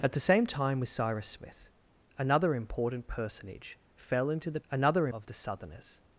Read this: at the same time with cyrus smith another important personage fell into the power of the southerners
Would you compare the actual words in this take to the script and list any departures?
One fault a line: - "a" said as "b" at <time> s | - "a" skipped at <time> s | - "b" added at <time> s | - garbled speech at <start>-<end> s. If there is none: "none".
- "power" said as "another" at 4.7 s